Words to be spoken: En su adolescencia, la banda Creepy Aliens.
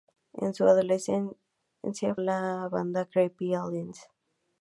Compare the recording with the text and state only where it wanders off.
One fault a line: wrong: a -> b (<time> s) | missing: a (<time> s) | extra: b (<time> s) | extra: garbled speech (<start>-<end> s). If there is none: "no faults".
no faults